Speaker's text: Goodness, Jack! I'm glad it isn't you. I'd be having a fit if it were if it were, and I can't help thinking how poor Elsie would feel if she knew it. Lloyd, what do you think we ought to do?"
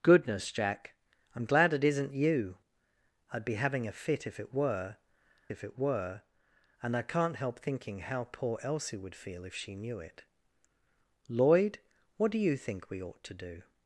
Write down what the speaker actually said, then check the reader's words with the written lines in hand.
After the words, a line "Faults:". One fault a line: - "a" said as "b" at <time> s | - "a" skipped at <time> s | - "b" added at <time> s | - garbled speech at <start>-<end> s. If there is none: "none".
Goodness, Jack! I'm glad it isn't you. I'd be having a fit if it were if it were, and I can't help thinking how poor Elsie would feel if she knew it. Lloyd, what do you think we ought to do?"
Faults:
none